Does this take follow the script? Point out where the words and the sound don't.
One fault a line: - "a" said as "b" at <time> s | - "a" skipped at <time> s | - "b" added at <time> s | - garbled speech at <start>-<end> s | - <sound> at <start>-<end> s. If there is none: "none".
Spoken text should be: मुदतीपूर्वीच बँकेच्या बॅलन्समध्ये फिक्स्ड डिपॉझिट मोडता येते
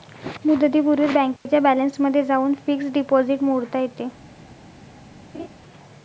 - dropout at 1.4-1.5 s
- "जाऊन" added at 2.3 s
- laugh at 5.3-5.5 s